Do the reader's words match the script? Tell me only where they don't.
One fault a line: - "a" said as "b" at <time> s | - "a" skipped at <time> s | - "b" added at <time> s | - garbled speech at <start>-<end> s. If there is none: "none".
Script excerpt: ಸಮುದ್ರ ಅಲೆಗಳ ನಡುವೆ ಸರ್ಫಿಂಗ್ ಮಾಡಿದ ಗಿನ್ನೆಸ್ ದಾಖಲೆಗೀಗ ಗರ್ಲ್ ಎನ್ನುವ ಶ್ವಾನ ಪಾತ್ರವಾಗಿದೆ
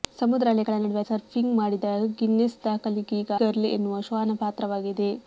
none